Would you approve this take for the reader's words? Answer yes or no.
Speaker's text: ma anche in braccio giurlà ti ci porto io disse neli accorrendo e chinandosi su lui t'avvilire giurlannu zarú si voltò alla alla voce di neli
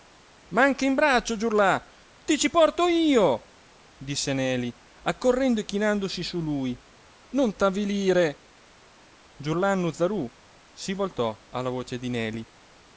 no